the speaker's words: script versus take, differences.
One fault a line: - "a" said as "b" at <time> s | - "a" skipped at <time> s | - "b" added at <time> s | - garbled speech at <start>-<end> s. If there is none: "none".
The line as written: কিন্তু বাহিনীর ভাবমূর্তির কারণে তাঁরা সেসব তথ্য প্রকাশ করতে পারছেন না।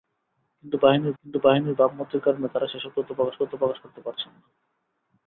- "কিন্তু বাহিনীর" added at 1.2 s
- "তথ্য প্রকাশ" added at 3.4 s